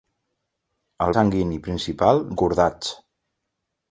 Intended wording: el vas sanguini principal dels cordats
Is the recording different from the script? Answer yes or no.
yes